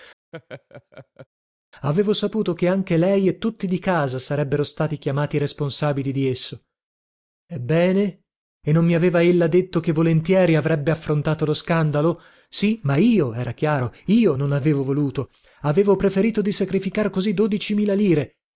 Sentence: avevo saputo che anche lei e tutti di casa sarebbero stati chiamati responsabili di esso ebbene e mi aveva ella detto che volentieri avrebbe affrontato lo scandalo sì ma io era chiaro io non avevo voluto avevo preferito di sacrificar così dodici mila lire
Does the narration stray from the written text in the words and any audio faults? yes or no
yes